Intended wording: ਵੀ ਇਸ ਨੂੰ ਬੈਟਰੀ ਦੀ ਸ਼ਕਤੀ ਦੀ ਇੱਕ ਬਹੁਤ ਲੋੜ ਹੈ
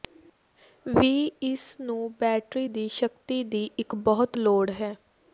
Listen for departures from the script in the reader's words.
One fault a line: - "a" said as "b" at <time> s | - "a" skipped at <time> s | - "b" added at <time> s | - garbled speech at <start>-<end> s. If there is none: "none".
none